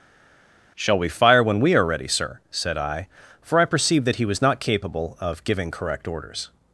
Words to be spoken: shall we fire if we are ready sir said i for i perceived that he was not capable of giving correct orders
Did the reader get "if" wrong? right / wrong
wrong